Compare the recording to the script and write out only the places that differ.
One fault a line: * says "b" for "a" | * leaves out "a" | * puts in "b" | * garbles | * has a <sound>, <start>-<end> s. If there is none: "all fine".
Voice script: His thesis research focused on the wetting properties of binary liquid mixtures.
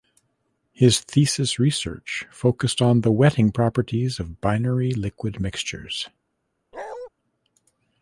* has a bark, 6.7-7.1 s